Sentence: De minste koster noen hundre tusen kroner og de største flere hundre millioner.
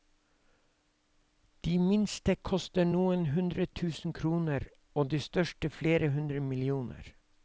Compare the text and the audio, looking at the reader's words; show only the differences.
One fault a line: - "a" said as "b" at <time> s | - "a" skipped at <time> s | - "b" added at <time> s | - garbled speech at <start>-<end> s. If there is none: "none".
none